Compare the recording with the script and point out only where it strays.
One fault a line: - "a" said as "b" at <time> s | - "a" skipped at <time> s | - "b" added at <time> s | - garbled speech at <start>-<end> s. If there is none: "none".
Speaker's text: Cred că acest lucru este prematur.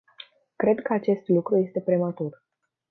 none